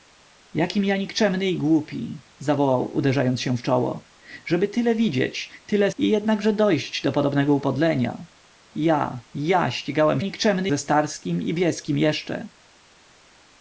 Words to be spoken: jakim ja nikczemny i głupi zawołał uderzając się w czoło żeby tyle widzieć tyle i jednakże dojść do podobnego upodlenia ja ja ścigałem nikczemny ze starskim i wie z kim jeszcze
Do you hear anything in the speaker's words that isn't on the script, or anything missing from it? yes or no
no